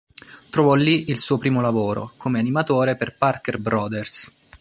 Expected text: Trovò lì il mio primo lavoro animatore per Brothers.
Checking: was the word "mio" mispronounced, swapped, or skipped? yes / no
yes